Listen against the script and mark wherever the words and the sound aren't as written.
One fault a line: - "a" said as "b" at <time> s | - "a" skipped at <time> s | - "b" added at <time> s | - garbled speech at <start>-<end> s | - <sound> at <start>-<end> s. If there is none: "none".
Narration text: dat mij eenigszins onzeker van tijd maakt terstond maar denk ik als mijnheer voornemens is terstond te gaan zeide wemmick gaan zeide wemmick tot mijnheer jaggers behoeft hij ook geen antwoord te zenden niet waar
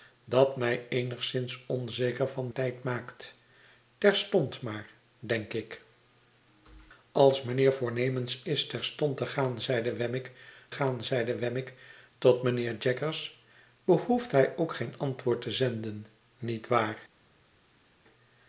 none